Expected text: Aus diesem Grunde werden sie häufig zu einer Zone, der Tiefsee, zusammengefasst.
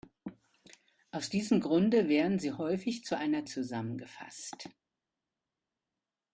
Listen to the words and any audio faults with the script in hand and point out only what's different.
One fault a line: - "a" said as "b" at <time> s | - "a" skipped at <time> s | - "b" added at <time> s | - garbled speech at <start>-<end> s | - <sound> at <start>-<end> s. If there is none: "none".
- "Zone der Tiefsee" skipped at 3.5 s